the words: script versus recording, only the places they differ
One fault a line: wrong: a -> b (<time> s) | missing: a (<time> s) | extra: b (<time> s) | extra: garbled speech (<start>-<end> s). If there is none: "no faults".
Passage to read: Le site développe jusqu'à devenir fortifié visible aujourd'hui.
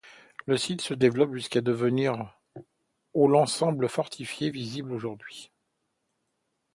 extra: se (0.8 s)
extra: au l'ensemble (3.1 s)